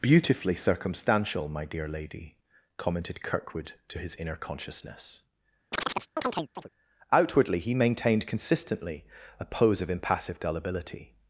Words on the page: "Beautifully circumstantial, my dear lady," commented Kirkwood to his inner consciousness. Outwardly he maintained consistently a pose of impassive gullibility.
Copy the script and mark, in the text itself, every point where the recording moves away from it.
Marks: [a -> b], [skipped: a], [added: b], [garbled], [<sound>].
"Beautifully circumstantial, my dear lady," commented Kirkwood to his inner consciousness. [chirp] Outwardly he maintained consistently a pose of impassive gullibility.